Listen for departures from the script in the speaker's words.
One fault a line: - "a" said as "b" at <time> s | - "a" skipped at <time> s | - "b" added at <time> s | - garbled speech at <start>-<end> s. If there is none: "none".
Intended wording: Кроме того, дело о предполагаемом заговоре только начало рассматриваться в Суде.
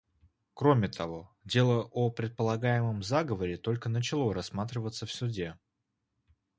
none